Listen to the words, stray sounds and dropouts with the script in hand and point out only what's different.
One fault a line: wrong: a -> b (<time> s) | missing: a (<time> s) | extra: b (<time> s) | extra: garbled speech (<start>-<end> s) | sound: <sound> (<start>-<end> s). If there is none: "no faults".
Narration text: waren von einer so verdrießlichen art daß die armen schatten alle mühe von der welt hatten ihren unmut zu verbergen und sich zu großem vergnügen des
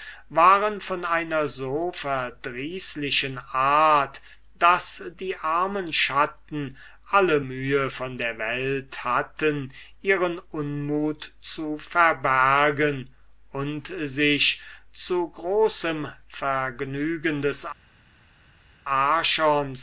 no faults